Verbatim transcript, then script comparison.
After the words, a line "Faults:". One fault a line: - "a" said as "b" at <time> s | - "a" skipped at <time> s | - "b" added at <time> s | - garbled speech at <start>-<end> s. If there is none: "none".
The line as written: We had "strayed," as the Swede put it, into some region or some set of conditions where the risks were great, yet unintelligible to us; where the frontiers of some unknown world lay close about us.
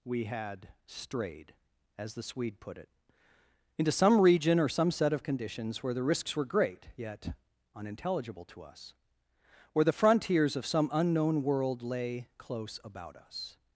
We had "strayed," as the Swede put it, into some region or some set of conditions where the risks were great, yet unintelligible to us; where the frontiers of some unknown world lay close about us.
Faults:
none